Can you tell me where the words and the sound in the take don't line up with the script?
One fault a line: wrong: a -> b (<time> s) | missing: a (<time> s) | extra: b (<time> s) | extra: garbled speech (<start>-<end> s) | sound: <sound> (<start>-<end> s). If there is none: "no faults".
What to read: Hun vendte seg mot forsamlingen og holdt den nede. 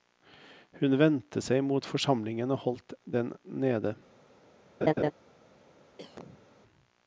sound: laugh (4.8-5.1 s)
sound: cough (6.0-6.5 s)